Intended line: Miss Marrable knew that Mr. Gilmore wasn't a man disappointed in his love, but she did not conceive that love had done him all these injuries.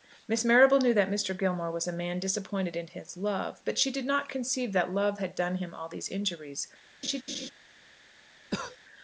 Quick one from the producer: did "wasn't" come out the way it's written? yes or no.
no